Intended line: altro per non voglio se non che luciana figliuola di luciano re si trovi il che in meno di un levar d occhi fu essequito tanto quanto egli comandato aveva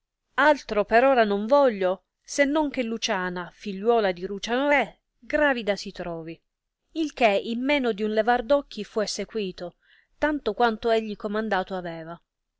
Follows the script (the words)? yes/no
no